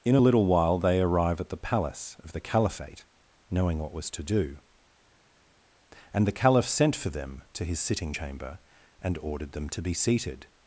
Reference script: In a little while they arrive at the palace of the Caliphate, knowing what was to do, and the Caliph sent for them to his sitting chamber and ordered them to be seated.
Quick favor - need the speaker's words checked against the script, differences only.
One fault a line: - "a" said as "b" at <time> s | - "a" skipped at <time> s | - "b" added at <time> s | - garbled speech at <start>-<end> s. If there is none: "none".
none